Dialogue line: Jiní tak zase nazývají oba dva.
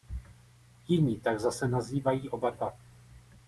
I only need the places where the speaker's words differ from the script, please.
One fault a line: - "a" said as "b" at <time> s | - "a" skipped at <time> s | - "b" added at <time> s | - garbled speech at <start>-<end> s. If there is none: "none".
none